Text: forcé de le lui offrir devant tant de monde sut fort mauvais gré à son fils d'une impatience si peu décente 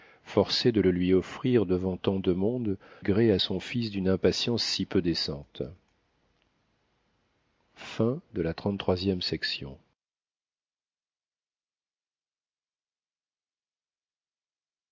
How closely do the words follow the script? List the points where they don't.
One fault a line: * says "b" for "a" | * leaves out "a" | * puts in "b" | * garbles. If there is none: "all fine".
* leaves out "sut fort mauvais"